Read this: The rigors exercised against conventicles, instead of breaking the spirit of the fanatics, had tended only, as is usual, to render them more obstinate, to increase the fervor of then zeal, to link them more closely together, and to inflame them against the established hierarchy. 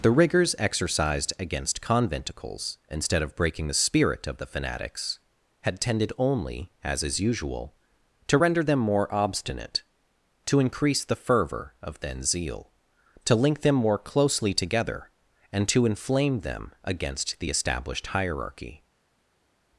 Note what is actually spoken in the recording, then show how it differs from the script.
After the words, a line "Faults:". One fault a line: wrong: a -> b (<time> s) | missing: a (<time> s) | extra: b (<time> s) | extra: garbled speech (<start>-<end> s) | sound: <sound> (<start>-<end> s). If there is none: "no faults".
The rigors exercised against conventicles, instead of breaking the spirit of the fanatics, had tended only, as is usual, to render them more obstinate, to increase the fervor of then zeal, to link them more closely together, and to inflame them against the established hierarchy.
Faults:
no faults